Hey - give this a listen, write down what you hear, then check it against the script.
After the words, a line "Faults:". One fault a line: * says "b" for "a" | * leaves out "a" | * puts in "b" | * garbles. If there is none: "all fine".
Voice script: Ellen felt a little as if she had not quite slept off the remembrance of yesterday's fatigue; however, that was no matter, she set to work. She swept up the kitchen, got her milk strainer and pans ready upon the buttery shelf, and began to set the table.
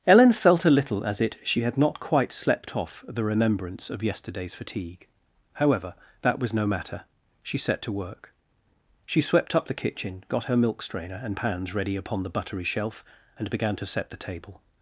Ellen felt a little as it she had not quite slept off the remembrance of yesterday's fatigue; however, that was no matter, she set to work. She swept up the kitchen, got her milk strainer and pans ready upon the buttery shelf, and began to set the table.
Faults:
* says "it" for "if"